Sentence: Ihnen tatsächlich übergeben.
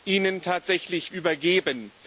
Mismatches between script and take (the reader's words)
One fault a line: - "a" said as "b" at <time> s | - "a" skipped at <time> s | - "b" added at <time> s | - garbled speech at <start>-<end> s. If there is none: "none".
none